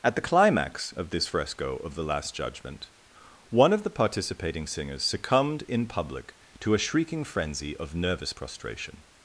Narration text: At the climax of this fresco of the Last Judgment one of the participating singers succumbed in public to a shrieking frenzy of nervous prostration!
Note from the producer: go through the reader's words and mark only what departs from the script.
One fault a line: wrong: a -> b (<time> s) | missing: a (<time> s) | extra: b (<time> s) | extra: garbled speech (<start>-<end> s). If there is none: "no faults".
no faults